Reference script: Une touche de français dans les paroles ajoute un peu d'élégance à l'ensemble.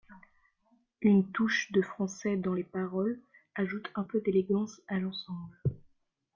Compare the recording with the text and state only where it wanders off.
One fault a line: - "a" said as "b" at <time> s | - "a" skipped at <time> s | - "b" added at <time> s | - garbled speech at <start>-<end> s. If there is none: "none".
none